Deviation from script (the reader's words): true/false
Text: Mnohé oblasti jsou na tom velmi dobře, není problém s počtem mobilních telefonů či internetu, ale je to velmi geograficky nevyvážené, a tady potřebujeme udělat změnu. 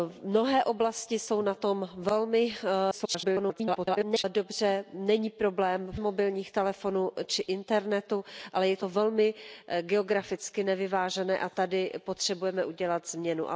true